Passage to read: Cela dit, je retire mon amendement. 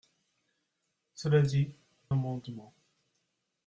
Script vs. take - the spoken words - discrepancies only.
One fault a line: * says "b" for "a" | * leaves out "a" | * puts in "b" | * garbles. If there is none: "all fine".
* leaves out "je retire mon"